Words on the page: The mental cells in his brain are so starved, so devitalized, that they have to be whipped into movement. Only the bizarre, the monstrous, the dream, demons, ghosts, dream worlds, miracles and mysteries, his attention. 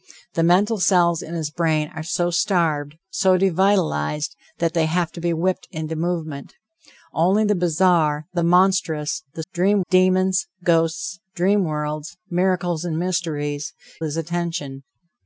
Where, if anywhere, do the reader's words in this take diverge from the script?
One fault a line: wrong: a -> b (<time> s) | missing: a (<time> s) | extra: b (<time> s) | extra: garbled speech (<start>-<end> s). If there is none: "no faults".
no faults